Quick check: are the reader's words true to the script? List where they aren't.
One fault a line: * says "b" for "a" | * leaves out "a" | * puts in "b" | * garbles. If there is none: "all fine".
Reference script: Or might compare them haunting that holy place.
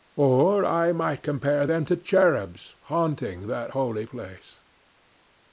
* puts in "I"
* puts in "to cherubs"